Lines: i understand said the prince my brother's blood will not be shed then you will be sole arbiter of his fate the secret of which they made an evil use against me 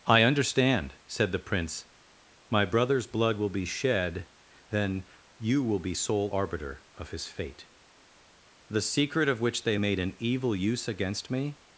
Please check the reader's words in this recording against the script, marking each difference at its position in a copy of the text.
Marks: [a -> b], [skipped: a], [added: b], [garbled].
i understand said the prince my brother's blood will [skipped: not] be shed then you will be sole arbiter of his fate the secret of which they made an evil use against me